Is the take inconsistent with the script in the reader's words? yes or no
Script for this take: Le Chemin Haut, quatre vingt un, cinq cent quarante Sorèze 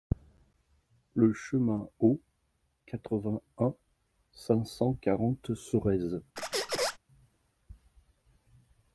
no